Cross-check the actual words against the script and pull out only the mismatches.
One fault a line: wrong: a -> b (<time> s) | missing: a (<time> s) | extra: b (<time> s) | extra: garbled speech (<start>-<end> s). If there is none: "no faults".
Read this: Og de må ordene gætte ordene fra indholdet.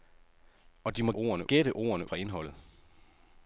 no faults